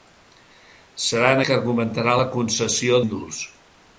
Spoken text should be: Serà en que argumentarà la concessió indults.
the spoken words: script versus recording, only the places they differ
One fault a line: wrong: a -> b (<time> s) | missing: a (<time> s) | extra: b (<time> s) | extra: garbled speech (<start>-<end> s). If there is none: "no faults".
no faults